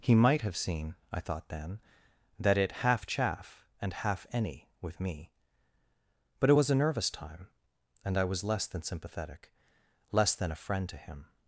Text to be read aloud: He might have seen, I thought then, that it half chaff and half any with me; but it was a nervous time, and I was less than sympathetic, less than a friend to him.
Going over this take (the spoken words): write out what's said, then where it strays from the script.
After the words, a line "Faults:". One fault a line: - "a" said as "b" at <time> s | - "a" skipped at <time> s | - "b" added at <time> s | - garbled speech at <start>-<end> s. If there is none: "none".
He might have seen, I thought then, that it half chaff and half any with me; but it was a nervous time, and I was less than sympathetic, less than a friend to him.
Faults:
none